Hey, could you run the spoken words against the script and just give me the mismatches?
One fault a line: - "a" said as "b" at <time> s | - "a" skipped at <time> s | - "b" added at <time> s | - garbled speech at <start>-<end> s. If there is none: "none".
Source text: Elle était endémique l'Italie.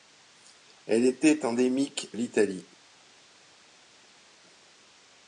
none